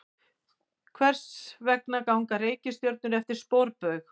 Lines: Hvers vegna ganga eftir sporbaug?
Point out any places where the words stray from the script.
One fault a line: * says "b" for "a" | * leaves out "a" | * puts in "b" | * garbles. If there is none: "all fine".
* puts in "reikistjörnur"